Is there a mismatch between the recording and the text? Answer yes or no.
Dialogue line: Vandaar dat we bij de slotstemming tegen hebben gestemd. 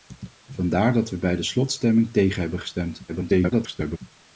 yes